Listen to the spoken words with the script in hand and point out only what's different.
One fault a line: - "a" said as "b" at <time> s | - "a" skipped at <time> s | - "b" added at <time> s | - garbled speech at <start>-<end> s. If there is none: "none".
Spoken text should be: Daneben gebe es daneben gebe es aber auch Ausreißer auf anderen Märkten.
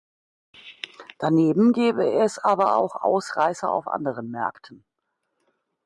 - "daneben gebe es" skipped at 2.4 s